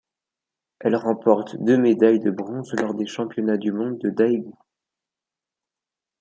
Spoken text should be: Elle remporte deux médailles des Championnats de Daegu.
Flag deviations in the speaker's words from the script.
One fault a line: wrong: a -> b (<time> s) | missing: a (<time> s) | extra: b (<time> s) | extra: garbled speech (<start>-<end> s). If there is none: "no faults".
extra: de bronze lors (2.2 s)
extra: du monde (3.6 s)